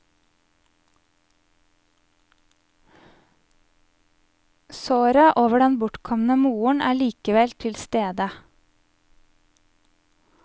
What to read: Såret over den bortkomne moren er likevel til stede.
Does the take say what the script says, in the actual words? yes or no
yes